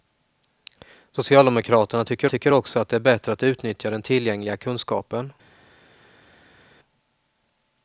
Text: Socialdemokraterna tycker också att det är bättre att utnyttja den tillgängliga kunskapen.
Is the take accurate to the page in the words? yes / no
no